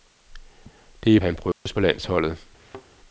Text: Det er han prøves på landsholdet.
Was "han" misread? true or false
false